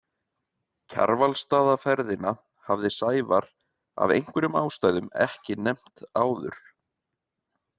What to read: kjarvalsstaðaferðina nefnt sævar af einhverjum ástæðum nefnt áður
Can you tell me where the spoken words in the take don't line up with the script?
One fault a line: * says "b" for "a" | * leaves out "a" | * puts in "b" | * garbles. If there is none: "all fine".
* says "hafði" for "nefnt"
* puts in "ekki"